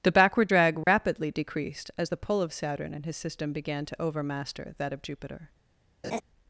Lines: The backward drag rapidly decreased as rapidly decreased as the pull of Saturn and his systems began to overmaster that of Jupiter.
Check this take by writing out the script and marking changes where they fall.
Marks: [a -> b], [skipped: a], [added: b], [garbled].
The backward drag rapidly decreased as [skipped: rapidly decreased as] the pull of Saturn and his [systems -> system] began to overmaster that of Jupiter.